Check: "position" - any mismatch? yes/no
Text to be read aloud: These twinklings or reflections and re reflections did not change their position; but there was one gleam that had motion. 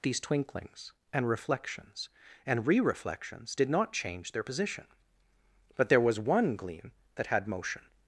no